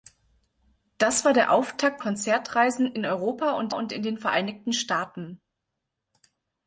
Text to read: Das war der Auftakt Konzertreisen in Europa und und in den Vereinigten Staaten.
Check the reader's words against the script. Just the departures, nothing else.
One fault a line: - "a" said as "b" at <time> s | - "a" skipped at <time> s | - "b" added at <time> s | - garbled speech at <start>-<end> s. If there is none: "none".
none